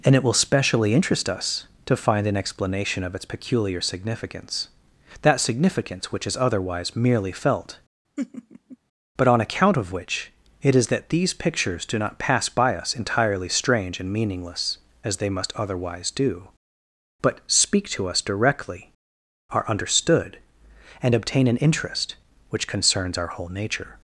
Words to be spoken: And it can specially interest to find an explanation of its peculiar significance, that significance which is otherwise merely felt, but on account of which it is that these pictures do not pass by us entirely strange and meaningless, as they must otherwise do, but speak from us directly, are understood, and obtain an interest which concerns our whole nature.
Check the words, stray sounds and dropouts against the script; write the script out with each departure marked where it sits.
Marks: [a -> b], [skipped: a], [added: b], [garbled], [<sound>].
And it [can -> will] specially interest [added: us] to find an explanation of its peculiar significance, that significance which is otherwise merely felt, [laugh] but on account of which it is that these pictures do not pass by us entirely strange and meaningless, as they must otherwise do, but speak [from -> to] us directly, are understood, and obtain an interest which concerns our whole nature.